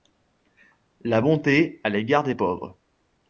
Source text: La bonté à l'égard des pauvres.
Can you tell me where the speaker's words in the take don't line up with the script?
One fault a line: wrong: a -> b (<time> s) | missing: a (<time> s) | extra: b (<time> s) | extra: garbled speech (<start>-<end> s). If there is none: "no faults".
no faults